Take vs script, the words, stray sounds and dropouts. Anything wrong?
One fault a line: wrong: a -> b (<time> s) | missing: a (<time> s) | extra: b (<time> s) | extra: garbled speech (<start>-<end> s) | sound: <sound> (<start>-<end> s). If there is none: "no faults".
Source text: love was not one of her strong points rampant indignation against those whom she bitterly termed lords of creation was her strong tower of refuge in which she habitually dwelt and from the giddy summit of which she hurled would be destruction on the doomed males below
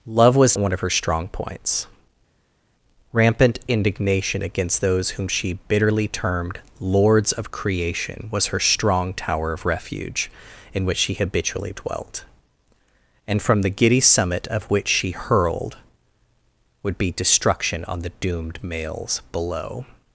missing: not (0.6 s)